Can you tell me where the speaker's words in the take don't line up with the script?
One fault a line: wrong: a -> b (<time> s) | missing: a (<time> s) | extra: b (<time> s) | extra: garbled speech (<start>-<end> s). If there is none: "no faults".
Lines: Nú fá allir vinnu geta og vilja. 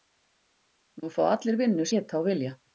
no faults